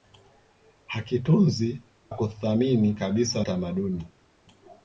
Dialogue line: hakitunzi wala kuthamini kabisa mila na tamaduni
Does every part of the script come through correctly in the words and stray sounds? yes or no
no